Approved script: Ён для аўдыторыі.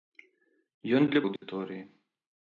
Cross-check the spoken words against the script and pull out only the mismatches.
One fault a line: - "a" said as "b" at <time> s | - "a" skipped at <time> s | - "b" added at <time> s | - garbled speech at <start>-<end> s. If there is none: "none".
none